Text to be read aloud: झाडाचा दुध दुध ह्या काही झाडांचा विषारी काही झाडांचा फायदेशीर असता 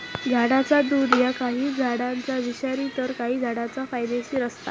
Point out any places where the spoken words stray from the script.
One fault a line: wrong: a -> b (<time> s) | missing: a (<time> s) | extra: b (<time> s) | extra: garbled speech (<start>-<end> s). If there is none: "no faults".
missing: दुध (1.1 s)
extra: तर (3.0 s)